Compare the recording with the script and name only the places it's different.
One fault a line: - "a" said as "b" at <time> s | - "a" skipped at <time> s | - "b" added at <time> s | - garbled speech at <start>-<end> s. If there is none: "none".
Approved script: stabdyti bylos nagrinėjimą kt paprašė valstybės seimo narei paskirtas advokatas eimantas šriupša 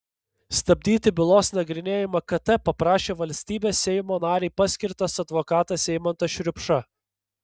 none